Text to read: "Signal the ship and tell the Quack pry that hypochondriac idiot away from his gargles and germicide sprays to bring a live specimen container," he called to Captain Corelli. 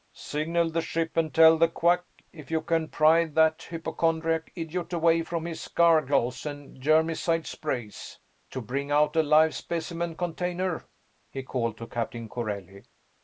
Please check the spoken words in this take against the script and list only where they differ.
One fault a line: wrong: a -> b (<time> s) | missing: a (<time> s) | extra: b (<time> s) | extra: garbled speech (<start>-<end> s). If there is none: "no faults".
extra: if you can (2.3 s)
extra: out (8.9 s)